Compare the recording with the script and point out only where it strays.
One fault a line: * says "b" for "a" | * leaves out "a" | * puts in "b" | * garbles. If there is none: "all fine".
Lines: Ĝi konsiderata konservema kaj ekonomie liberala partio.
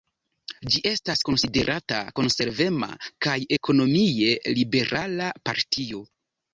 * puts in "estas"